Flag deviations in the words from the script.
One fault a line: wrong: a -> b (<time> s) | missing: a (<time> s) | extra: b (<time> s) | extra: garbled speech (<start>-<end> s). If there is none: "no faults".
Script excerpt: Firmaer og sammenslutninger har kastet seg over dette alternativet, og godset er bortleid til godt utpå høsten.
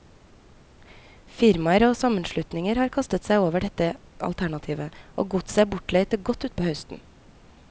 no faults